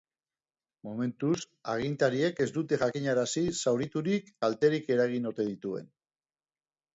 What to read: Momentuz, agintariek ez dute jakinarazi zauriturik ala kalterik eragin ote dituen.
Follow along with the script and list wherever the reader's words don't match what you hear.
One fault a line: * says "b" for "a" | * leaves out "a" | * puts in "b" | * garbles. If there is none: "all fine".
* leaves out "ala"